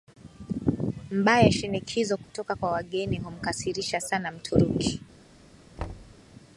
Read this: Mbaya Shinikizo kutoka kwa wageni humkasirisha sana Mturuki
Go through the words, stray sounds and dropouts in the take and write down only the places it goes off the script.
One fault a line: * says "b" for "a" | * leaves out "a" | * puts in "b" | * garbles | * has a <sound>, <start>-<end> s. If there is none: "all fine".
* has a dropout, 2.2-2.3 s
* has a thud, 5.8-6.2 s